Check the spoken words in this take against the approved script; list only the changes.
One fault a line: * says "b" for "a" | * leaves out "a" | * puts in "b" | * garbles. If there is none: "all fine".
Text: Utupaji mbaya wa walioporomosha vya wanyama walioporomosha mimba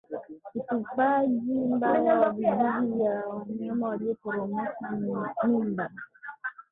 * says "vijusi" for "walioporomosha"